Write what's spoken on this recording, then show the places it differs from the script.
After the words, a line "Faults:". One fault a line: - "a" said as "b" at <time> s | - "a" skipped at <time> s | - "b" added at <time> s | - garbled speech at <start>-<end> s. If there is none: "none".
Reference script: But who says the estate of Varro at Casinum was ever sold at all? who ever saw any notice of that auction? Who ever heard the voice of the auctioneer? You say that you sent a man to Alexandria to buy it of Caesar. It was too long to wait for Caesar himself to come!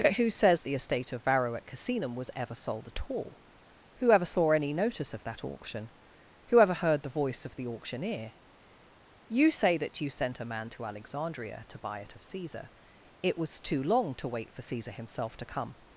But who says the estate of Varro at Casinum was ever sold at all? who ever saw any notice of that auction? Who ever heard the voice of the auctioneer? You say that you sent a man to Alexandria to buy it of Caesar. It was too long to wait for Caesar himself to come!
Faults:
none